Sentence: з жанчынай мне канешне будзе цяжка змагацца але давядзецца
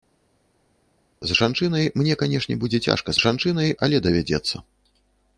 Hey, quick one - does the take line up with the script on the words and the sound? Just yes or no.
no